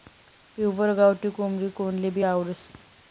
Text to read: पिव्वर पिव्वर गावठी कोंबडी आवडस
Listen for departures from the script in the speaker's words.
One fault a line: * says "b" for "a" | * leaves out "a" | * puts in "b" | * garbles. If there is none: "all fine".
* leaves out "पिव्वर"
* puts in "कोनलेभी"